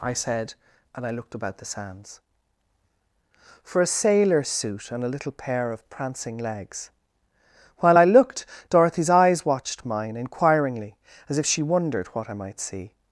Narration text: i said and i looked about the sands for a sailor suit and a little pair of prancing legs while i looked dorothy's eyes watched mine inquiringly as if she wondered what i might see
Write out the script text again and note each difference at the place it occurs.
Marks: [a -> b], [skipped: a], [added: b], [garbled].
i said and i looked about the sands for a sailor suit and a little pair of prancing legs while i looked dorothy's eyes watched mine inquiringly as if she wondered what i might see